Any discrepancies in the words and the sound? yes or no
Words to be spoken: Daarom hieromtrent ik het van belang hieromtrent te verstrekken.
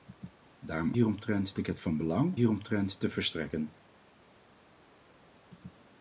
no